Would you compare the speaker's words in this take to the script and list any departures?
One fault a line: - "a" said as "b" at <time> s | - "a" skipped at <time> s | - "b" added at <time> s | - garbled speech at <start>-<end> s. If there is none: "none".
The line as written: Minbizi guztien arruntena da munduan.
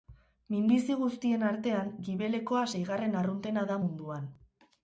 - "artean gibelekoa seigarren" added at 1.5 s